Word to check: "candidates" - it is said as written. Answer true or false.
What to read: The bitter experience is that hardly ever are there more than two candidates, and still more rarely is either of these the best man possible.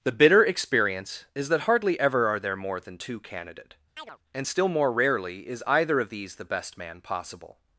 false